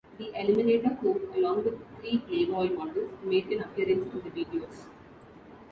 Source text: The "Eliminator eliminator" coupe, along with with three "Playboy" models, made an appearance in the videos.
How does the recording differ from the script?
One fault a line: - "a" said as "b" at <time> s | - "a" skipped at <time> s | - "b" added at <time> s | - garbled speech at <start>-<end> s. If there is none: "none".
- "eliminator" skipped at 1.0 s
- "with" skipped at 1.8 s